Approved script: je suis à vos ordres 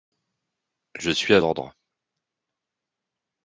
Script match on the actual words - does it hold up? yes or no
no